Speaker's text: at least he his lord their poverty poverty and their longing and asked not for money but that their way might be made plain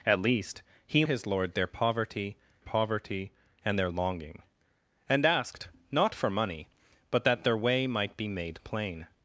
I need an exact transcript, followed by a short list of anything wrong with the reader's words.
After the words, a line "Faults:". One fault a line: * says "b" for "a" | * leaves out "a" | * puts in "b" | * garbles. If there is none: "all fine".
at least he his lord their poverty poverty and their longing and asked not for money but that their way might be made plain
Faults:
all fine